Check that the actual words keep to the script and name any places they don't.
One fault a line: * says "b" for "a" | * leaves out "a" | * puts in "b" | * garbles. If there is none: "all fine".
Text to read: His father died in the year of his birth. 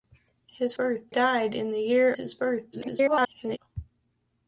* says "birth" for "father"
* leaves out "of"
* garbles